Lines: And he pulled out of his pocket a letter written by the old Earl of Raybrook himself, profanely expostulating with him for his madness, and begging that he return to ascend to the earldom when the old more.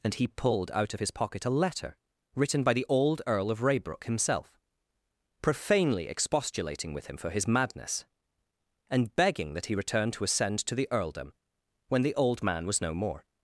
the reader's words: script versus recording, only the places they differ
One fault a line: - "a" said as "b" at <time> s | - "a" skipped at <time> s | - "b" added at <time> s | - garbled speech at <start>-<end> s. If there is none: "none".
- "man was no" added at 12.4 s